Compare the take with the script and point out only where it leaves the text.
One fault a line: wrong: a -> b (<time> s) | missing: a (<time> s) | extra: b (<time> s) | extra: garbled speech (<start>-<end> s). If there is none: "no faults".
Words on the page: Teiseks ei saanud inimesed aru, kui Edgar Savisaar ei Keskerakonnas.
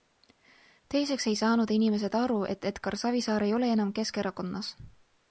wrong: kui -> et (2.5 s)
extra: ole enam (3.6 s)